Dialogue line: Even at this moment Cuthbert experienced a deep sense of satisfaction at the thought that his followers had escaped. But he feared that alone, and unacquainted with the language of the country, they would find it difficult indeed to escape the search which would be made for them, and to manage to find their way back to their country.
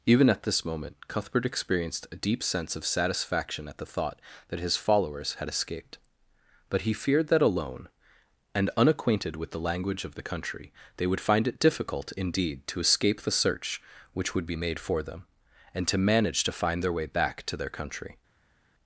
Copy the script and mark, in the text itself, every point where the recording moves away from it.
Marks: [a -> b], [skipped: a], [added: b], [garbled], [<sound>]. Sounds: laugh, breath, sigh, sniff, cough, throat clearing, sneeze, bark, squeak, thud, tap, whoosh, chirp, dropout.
Even at this moment Cuthbert experienced a deep sense of satisfaction at the thought that his followers had escaped. But he feared that alone, and unacquainted with the language of the country, they would find it difficult indeed to escape the search which would be made for them, and to manage to find their way back to their country.